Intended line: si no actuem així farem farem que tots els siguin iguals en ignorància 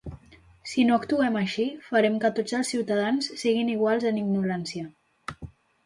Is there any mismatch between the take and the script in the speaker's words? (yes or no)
yes